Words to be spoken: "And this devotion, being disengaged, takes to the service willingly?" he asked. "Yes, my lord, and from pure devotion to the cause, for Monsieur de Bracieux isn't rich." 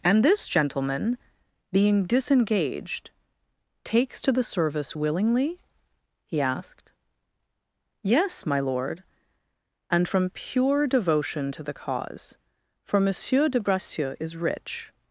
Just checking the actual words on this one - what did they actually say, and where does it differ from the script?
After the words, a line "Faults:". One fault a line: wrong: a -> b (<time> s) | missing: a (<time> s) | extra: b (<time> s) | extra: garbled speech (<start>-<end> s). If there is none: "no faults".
"And this gentleman, being disengaged, takes to the service willingly?" he asked. "Yes, my lord, and from pure devotion to the cause, for Monsieur de Bracieux is rich."
Faults:
wrong: devotion -> gentleman (0.5 s)
wrong: isn't -> is (14.2 s)